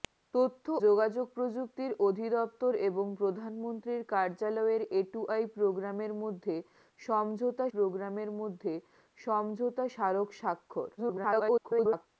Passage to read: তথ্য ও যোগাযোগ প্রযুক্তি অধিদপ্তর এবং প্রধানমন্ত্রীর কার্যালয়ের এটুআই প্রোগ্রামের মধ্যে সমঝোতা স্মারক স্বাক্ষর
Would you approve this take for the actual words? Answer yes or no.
no